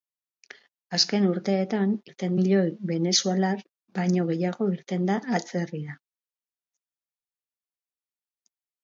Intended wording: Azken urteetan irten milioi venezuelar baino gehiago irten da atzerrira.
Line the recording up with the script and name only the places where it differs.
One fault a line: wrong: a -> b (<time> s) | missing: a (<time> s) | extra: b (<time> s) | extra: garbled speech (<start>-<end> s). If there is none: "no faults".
no faults